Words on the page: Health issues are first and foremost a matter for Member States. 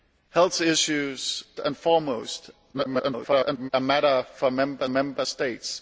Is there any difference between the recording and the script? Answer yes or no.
yes